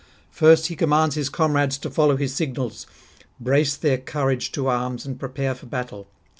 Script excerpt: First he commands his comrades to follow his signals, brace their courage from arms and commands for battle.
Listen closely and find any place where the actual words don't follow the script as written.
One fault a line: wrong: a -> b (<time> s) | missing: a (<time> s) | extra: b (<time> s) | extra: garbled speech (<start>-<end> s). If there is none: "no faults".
wrong: from -> to (4.5 s)
wrong: commands -> prepare (5.2 s)